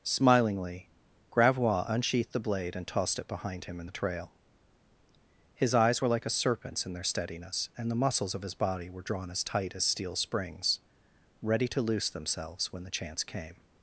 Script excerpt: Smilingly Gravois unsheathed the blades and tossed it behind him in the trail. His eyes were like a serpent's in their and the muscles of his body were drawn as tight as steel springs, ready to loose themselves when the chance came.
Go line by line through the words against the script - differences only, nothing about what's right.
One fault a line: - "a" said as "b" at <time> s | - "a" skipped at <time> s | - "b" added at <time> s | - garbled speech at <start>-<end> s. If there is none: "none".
- "blades" said as "blade" at 2.4 s
- "steadiness" added at 7.0 s